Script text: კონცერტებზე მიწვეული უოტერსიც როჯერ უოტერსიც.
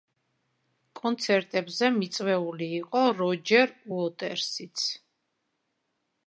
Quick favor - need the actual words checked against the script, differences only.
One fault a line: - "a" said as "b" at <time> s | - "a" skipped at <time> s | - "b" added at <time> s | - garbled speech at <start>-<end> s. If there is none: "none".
- "უოტერსიც" said as "იყო" at 2.8 s